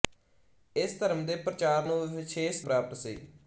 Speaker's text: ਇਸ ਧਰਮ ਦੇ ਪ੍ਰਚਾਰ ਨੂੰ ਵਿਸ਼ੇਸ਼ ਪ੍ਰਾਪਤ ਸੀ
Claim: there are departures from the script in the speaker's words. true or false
false